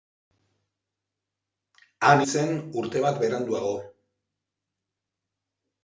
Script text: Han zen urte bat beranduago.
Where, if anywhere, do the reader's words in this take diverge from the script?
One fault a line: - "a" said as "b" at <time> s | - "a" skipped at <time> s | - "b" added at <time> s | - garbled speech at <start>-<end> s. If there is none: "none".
none